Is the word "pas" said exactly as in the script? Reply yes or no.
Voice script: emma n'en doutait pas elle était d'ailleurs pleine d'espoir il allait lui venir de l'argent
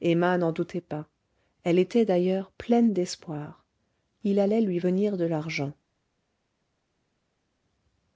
yes